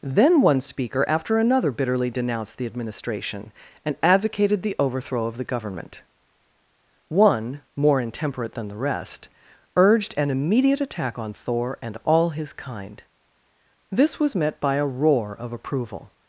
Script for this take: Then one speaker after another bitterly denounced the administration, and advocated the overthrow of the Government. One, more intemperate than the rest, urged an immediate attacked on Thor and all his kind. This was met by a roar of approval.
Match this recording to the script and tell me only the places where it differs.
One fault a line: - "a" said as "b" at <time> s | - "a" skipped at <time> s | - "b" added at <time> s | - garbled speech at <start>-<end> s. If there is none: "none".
- "attacked" said as "attack" at 10.8 s